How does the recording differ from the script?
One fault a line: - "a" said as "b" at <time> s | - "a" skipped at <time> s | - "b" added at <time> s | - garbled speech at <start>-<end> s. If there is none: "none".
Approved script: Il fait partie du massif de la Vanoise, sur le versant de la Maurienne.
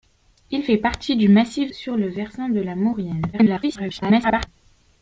- "de la Vanoise" skipped at 1.7 s
- garbled speech at 3.3-4.5 s